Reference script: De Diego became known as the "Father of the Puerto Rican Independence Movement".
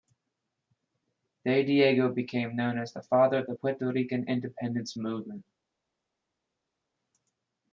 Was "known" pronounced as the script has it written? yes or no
yes